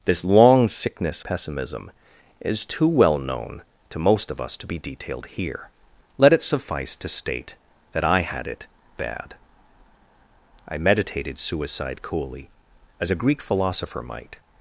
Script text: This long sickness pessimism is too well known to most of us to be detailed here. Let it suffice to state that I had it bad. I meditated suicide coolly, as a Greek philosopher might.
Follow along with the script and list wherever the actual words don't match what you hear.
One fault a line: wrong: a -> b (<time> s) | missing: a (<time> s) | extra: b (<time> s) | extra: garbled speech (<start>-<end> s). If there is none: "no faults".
no faults